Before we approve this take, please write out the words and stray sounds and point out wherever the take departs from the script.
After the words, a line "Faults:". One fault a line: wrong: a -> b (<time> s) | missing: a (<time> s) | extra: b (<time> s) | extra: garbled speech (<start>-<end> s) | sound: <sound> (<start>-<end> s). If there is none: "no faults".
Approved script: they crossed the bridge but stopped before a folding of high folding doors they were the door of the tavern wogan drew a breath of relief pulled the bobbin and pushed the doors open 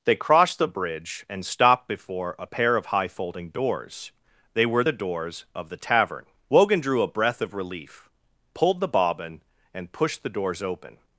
they crossed the bridge and stopped before a pair of high folding doors they were the doors of the tavern wogan drew a breath of relief pulled the bobbin and pushed the doors open
Faults:
wrong: but -> and (1.3 s)
wrong: folding -> pair (2.4 s)
wrong: door -> doors (4.9 s)